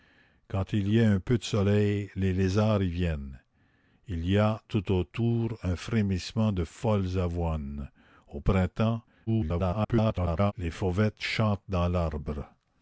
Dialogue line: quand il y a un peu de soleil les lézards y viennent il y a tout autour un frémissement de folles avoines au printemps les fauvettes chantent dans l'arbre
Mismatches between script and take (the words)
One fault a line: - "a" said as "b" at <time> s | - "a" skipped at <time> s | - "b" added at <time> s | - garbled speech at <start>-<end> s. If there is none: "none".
- garbled speech at 9.3-10.5 s